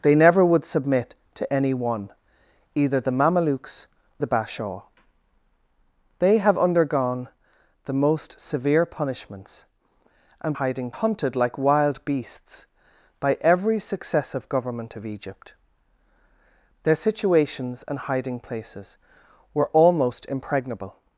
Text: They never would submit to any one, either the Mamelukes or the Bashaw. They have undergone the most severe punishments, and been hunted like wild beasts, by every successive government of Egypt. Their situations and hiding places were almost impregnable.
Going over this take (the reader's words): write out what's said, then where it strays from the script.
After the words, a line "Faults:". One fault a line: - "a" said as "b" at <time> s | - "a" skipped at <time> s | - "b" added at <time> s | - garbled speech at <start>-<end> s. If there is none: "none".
They never would submit to any one, either the Mamelukes the Bashaw. They have undergone the most severe punishments, and hiding hunted like wild beasts, by every successive government of Egypt. Their situations and hiding places were almost impregnable.
Faults:
- "or" skipped at 3.9 s
- "been" said as "hiding" at 10.5 s